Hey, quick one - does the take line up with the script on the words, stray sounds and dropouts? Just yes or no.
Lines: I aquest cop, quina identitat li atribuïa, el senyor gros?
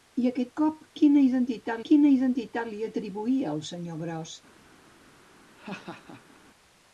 no